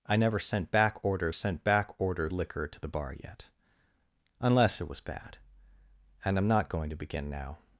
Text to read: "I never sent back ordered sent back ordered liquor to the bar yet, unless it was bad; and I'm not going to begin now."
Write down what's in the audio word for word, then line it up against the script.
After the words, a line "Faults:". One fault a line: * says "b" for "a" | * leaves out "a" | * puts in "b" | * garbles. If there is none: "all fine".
"I never sent back ordered sent back ordered liquor to the bar yet, unless it was bad; and I'm not going to begin now."
Faults:
all fine